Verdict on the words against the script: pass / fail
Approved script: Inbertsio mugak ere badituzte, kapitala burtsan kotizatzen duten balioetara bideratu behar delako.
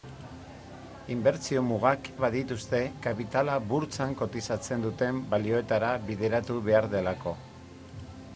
fail